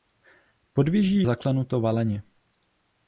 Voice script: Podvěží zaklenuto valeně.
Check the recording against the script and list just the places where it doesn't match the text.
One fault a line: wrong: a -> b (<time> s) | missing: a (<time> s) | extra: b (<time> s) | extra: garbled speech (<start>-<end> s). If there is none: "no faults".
no faults